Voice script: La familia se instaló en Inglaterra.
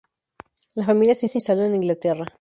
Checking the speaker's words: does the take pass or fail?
fail